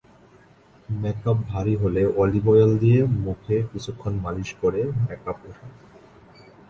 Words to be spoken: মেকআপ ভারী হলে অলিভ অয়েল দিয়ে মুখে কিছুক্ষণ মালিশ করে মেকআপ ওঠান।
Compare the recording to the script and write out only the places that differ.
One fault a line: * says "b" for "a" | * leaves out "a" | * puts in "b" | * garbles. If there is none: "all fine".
all fine